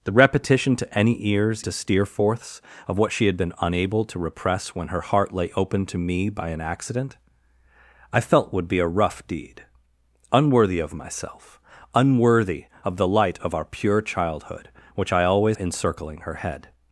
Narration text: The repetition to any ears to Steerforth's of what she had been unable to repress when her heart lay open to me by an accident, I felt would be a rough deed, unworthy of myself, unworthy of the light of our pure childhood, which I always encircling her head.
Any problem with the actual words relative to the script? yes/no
no